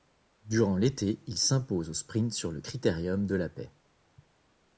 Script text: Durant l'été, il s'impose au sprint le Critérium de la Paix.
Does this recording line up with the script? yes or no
no